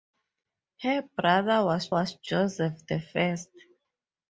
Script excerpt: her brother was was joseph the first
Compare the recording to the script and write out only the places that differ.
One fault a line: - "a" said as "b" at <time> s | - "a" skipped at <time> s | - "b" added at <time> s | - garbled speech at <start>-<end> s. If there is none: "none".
none